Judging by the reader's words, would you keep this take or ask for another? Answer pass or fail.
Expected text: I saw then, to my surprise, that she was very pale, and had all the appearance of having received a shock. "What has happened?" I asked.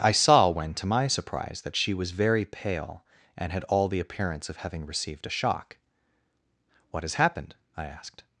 fail